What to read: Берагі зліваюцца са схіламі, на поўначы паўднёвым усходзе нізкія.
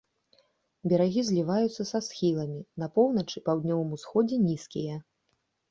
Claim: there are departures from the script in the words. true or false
false